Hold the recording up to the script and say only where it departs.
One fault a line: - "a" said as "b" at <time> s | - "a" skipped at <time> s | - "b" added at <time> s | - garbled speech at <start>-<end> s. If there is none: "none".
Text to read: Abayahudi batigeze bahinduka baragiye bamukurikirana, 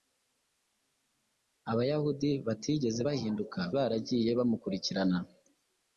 none